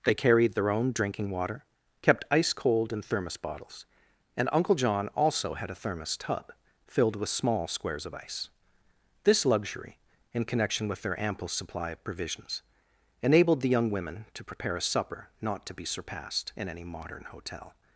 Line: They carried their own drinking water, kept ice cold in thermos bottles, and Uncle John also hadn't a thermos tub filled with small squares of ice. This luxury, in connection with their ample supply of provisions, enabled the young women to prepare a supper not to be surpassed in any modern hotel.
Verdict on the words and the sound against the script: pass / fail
fail